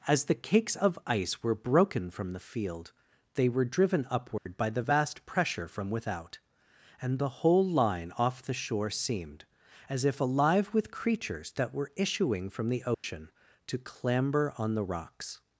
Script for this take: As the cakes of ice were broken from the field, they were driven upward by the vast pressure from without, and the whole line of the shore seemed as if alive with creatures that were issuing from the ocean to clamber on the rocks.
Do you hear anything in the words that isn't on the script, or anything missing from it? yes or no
yes